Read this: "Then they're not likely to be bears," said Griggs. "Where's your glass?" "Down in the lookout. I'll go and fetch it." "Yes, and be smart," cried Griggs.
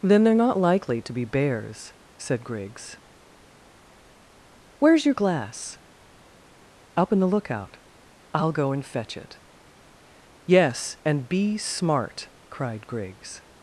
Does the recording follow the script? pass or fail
fail